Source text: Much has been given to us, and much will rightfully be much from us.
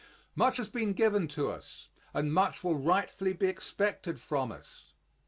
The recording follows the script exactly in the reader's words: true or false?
false